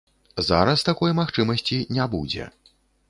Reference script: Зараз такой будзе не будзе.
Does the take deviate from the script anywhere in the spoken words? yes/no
yes